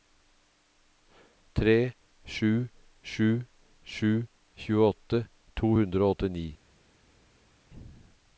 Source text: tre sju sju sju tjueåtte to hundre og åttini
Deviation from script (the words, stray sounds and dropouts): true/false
false